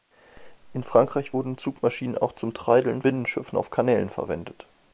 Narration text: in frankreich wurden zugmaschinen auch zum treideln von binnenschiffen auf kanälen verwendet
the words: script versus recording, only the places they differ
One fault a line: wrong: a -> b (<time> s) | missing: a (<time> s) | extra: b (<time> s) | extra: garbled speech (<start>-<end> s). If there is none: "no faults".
missing: von (3.0 s)